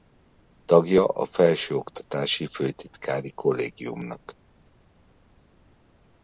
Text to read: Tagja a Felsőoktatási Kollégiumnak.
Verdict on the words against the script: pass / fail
fail